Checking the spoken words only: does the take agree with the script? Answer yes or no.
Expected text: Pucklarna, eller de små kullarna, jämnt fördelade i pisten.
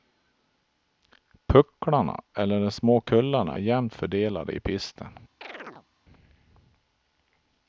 yes